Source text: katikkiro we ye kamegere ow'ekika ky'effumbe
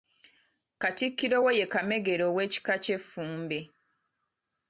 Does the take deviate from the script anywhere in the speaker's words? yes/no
no